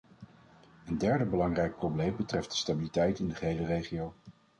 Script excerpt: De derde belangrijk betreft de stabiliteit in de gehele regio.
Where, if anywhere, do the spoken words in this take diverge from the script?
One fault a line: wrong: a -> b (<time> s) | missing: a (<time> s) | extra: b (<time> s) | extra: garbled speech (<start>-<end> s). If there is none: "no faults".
wrong: De -> Een (0.8 s)
extra: probleem (1.8 s)